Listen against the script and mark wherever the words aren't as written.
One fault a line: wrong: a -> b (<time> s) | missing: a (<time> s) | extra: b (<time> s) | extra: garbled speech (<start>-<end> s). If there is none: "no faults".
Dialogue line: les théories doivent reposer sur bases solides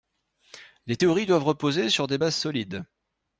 extra: des (2.1 s)